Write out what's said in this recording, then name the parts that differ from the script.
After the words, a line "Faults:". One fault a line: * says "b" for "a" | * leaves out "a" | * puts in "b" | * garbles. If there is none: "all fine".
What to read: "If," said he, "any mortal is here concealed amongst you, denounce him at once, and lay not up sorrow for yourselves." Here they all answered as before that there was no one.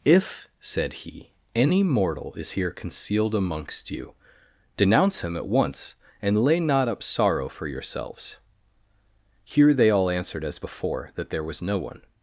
"If," said he, "any mortal is here concealed amongst you, denounce him at once, and lay not up sorrow for yourselves." Here they all answered as before that there was no one.
Faults:
all fine